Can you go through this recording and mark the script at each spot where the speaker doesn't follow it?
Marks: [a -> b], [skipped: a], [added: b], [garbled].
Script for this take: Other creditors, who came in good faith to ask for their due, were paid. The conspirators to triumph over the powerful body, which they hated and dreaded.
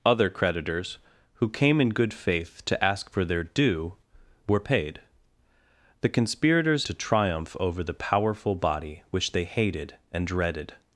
Other creditors, who came in good faith to ask for their due, were paid. The conspirators to triumph over the powerful body, which they hated and dreaded.